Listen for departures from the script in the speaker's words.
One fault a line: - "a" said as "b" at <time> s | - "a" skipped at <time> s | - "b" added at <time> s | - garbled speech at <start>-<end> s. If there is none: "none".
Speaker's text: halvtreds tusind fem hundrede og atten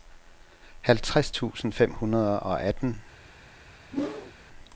none